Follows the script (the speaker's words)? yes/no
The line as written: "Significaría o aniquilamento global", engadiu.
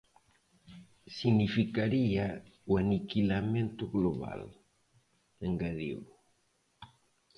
yes